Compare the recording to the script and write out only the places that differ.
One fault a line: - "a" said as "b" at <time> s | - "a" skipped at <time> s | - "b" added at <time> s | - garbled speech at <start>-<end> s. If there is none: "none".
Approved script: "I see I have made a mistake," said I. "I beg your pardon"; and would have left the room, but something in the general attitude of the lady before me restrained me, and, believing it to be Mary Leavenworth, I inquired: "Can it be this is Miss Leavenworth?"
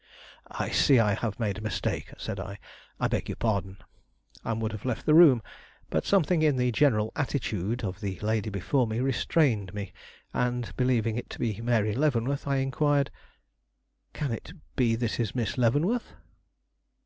none